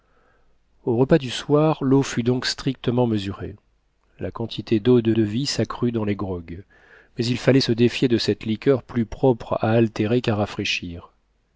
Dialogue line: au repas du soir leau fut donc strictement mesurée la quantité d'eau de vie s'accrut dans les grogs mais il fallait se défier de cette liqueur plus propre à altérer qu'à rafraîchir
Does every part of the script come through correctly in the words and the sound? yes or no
no